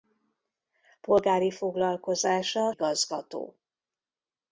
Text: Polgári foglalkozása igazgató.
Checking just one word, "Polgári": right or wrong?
right